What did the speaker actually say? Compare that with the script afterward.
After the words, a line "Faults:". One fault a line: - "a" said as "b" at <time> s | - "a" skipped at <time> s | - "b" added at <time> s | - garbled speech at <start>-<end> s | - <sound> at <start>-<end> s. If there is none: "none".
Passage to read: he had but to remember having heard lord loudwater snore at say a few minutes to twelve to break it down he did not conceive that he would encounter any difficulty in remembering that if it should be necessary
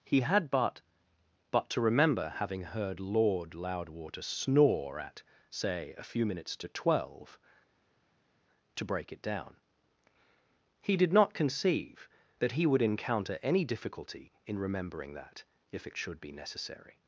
he had but but to remember having heard lord loudwater snore at say a few minutes to twelve to break it down he did not conceive that he would encounter any difficulty in remembering that if it should be necessary
Faults:
- "but" added at 1.5 s